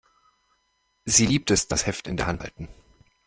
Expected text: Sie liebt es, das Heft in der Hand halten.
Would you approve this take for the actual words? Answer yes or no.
yes